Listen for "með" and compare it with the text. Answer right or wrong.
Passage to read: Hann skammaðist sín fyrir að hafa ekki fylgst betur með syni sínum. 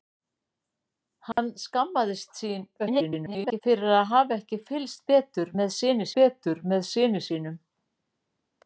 right